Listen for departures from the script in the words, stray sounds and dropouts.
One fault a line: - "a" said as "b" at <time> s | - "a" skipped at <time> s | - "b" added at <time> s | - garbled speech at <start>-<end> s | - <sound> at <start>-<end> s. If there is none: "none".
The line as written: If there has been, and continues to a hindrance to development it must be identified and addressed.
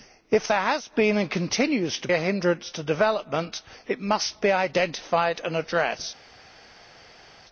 none